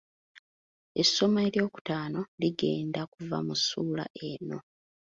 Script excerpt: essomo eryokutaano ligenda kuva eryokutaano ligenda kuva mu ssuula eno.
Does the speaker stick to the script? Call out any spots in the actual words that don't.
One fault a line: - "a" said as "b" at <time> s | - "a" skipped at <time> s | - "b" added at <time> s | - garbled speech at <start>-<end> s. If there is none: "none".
- "eryokutaano ligenda kuva" skipped at 3.4 s